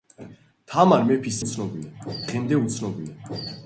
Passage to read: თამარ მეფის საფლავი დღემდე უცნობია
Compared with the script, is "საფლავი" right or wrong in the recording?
wrong